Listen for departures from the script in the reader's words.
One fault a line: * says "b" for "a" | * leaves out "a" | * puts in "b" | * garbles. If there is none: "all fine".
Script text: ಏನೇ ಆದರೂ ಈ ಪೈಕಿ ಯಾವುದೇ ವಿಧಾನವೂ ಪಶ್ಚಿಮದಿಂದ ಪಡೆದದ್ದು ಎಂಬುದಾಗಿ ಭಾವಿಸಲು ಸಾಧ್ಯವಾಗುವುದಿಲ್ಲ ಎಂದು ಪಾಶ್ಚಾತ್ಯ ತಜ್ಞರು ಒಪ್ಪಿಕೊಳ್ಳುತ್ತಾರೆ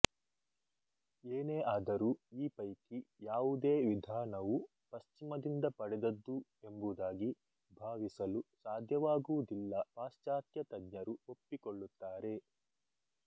* leaves out "ಎಂದು"